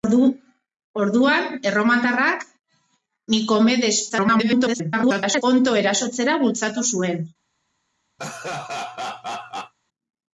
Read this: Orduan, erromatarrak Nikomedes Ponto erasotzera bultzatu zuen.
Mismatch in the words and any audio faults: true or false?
true